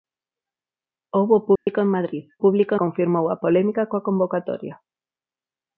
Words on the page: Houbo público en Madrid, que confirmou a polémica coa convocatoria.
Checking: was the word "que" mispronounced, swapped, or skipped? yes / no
yes